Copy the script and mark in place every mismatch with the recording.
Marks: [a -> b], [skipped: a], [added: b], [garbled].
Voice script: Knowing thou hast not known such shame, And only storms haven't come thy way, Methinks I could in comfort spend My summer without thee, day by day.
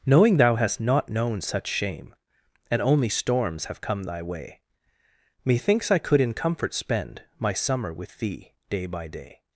Knowing thou hast not known such shame, And only storms [haven't -> have] come thy way, Methinks I could in comfort spend My summer [without -> with] thee, day by day.